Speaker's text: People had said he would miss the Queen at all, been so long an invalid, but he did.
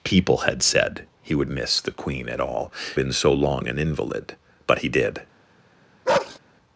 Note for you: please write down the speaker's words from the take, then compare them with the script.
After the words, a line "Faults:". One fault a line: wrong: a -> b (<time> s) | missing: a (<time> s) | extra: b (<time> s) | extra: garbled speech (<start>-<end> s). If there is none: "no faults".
People had said he would miss the Queen at all, been so long an invalid, but he did.
Faults:
no faults